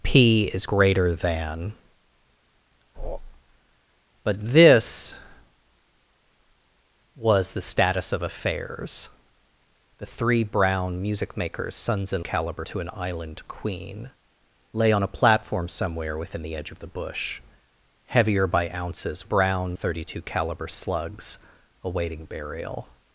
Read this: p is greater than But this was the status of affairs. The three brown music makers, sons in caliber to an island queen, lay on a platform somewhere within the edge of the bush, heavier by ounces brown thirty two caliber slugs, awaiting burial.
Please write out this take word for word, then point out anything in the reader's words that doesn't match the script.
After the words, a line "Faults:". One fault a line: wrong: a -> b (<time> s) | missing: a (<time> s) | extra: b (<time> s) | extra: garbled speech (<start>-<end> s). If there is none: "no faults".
p is greater than But this was the status of affairs. The three brown music makers, sons in caliber to an island queen, lay on a platform somewhere within the edge of the bush, heavier by ounces brown thirty two caliber slugs, awaiting burial.
Faults:
no faults